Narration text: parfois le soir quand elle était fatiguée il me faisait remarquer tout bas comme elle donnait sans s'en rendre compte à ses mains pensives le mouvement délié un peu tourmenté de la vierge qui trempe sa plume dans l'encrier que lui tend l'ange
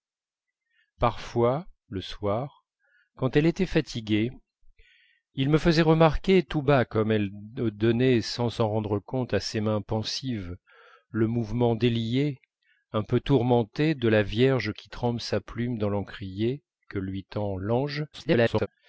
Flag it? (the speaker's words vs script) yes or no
yes